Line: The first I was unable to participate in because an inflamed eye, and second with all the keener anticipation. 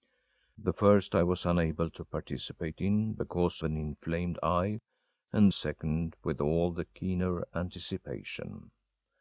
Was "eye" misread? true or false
false